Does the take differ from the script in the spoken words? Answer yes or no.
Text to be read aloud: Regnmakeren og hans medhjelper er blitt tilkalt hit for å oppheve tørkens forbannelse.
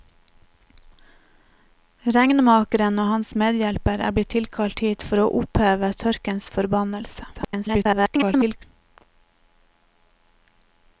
yes